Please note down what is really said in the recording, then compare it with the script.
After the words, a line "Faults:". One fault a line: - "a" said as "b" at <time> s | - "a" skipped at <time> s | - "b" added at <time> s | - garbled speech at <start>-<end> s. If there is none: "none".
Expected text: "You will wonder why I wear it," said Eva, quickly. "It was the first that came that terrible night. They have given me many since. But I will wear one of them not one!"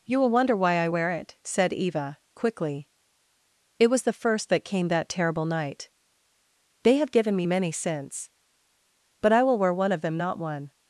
"You will wonder why I wear it," said Eva, quickly. "It was the first that came that terrible night. They have given me many since. But I will wear one of them not one!"
Faults:
none